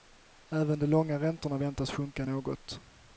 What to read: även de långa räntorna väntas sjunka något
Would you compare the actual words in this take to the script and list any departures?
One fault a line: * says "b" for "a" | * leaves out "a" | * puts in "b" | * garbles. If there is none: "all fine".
all fine